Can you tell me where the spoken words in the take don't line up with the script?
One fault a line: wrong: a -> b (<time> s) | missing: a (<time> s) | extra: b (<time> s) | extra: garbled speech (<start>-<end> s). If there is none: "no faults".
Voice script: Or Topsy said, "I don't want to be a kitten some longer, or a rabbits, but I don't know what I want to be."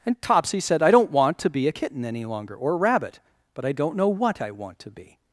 wrong: Or -> And (0.1 s)
wrong: some -> any (2.0 s)
wrong: rabbits -> rabbit (2.8 s)